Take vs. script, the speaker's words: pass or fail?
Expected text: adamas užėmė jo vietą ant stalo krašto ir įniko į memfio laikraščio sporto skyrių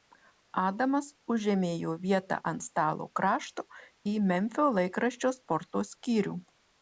fail